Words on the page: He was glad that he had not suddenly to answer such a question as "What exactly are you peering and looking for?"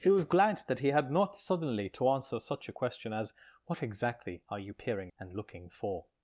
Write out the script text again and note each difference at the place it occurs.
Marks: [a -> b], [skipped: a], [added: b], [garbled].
He was glad that he had not suddenly to answer such a question as "What exactly are you peering and looking for?"